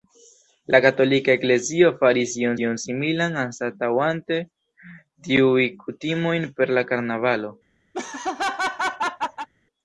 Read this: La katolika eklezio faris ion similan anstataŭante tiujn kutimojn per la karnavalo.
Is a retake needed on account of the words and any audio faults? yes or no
yes